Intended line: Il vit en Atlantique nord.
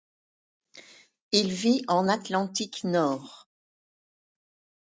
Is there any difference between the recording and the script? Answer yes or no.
no